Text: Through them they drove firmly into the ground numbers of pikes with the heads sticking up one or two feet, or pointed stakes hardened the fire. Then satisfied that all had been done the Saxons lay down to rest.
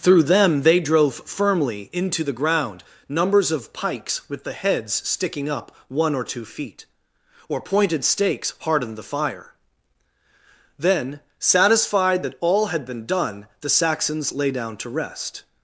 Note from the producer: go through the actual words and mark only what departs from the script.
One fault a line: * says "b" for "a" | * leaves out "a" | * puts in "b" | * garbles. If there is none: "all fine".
all fine